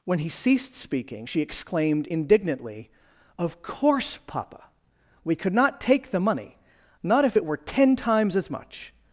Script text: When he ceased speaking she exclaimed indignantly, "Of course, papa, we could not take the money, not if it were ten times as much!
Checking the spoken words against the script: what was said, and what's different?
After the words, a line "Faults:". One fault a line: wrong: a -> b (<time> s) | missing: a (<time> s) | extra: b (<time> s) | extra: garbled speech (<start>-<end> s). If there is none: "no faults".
When he ceased speaking she exclaimed indignantly, "Of course, papa, we could not take the money, not if it were ten times as much!
Faults:
no faults